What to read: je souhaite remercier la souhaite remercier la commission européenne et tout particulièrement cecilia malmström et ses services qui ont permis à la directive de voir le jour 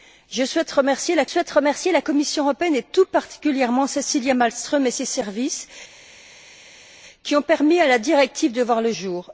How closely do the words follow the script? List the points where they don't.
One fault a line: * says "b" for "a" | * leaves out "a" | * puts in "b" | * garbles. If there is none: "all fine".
all fine